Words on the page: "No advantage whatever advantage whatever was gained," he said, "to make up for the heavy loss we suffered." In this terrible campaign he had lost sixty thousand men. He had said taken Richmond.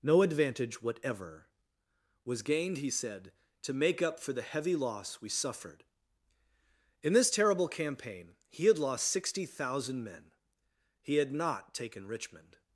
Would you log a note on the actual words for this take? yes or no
yes